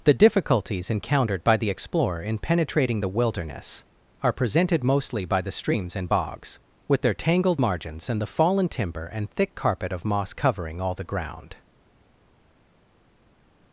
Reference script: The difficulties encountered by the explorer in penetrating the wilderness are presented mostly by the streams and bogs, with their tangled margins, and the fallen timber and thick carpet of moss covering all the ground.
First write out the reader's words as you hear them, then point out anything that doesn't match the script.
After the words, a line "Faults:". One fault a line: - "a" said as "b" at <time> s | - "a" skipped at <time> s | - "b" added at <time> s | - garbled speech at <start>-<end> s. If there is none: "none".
The difficulties encountered by the explorer in penetrating the wilderness are presented mostly by the streams and bogs, with their tangled margins, and the fallen timber and thick carpet of moss covering all the ground.
Faults:
none